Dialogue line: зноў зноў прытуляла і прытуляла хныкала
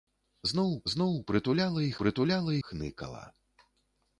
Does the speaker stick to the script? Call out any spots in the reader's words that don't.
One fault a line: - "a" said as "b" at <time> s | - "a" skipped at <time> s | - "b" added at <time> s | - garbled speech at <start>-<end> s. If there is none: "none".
none